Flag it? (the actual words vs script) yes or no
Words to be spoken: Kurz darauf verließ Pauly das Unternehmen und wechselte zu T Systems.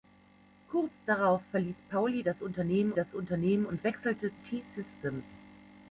yes